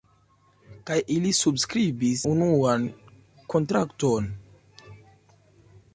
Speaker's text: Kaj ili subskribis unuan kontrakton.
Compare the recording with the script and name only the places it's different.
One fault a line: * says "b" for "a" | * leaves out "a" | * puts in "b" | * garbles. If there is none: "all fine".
all fine